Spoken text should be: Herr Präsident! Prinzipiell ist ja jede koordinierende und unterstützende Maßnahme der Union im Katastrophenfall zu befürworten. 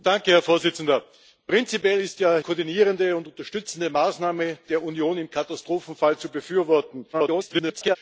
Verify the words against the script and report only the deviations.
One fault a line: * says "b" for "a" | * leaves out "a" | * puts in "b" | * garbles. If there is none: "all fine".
* leaves out "jede"
* garbles